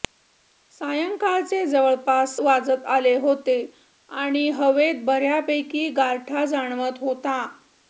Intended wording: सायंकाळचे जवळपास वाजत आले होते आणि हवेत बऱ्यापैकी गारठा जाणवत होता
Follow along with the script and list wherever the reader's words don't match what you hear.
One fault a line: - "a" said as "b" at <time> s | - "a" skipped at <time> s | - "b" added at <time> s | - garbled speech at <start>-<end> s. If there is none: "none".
none